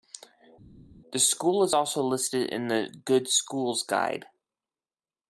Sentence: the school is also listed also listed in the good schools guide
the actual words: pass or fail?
fail